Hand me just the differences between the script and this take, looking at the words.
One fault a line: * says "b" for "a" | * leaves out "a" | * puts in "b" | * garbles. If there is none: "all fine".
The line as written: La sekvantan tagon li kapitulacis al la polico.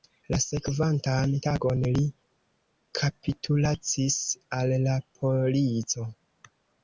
all fine